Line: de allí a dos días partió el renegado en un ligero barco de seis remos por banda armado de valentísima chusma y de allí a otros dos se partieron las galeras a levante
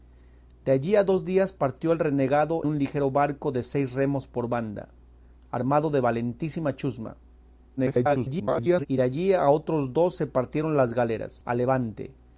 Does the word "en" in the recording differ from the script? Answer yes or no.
yes